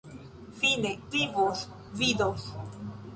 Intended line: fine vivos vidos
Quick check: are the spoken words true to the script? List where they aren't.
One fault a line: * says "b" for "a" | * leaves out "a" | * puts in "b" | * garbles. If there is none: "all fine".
all fine